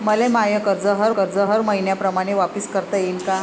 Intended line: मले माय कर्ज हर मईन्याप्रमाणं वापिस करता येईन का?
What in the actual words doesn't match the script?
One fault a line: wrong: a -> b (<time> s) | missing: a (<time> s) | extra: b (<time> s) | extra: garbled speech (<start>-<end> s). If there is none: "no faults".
extra: कर्ज हर (1.1 s)